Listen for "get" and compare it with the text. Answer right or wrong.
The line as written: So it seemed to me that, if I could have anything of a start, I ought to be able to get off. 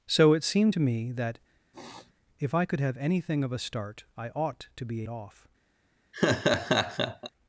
wrong